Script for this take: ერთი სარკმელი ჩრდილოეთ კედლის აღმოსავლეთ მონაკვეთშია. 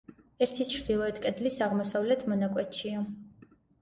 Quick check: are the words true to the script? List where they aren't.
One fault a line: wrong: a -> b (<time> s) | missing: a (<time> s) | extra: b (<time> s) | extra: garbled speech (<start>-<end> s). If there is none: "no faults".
missing: სარკმელი (0.7 s)